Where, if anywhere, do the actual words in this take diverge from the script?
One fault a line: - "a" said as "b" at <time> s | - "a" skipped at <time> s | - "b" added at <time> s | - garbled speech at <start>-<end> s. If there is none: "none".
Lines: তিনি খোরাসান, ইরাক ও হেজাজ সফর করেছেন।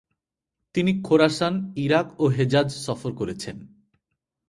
none